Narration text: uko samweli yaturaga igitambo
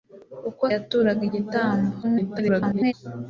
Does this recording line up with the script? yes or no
no